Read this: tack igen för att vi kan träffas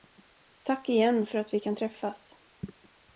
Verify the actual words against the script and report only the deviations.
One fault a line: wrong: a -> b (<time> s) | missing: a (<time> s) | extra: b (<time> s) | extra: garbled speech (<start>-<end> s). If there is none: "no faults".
no faults